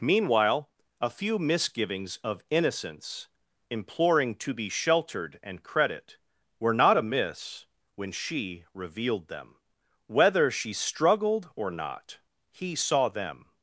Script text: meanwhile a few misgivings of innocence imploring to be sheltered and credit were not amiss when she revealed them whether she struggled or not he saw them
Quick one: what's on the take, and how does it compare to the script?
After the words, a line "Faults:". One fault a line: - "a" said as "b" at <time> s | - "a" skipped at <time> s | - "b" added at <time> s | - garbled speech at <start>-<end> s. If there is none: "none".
meanwhile a few misgivings of innocence imploring to be sheltered and credit were not amiss when she revealed them whether she struggled or not he saw them
Faults:
none